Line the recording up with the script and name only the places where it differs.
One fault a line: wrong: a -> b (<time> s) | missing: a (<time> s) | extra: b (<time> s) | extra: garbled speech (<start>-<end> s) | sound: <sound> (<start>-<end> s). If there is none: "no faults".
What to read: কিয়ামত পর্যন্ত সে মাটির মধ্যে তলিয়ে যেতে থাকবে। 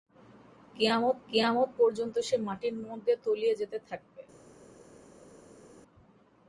extra: কিয়ামত (1.3 s)